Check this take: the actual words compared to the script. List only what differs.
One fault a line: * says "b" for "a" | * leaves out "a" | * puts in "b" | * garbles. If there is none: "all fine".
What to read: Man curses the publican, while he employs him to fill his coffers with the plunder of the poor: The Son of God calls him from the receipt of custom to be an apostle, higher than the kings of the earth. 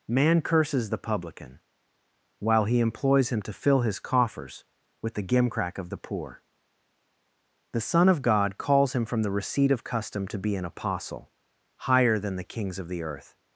* says "gimcrack" for "plunder"